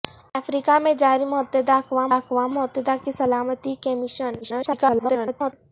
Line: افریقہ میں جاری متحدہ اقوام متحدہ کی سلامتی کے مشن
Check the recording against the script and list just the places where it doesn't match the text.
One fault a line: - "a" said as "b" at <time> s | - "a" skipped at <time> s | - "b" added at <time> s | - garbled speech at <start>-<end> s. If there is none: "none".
- "اقوام" added at 2.1 s
- garbled speech at 4.4-5.5 s